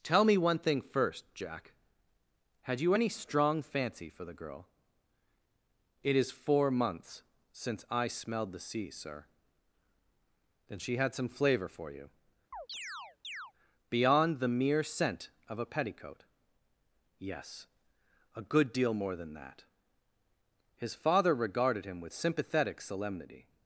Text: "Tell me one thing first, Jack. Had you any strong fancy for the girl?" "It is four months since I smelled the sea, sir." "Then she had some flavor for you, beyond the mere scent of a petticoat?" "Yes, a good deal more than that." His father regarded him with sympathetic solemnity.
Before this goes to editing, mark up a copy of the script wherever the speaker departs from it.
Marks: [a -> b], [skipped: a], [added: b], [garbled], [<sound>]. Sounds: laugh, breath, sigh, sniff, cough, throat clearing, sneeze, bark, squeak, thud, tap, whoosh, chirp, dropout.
"Tell me one thing first, Jack. Had you any strong fancy for the girl?" "It is four months since I smelled the sea, sir." "Then she had some flavor for you, [chirp] beyond the mere scent of a petticoat?" "Yes, a good deal more than that." His father regarded him with sympathetic solemnity.